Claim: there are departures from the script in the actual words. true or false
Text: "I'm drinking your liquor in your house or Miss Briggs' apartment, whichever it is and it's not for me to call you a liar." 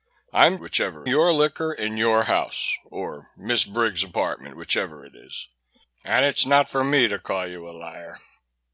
true